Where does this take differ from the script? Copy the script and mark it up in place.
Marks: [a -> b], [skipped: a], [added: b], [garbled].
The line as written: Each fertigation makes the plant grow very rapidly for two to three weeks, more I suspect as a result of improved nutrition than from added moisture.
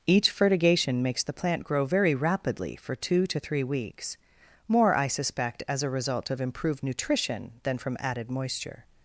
Each fertigation makes the plant grow very rapidly for two to three weeks, more I suspect as a result of improved nutrition than from added moisture.